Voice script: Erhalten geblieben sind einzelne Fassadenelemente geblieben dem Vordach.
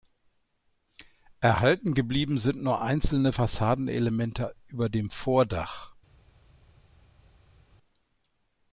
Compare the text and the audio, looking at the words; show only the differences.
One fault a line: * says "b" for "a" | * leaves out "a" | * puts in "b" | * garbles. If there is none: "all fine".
* puts in "nur"
* says "über" for "geblieben"